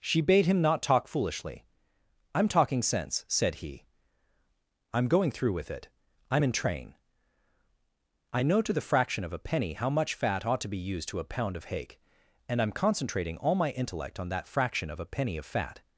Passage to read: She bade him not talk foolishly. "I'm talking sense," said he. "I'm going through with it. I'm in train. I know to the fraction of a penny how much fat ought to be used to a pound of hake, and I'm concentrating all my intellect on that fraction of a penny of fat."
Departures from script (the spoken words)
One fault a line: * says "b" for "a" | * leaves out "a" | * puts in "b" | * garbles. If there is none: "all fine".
all fine